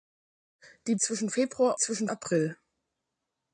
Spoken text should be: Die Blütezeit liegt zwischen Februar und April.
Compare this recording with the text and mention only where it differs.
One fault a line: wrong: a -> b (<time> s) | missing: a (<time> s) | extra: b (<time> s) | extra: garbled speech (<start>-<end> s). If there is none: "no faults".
missing: Blütezeit liegt (0.9 s)
wrong: und -> zwischen (1.8 s)